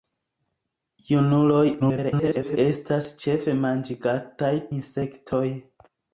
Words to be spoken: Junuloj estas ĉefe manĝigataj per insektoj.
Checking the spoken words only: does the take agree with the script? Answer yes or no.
no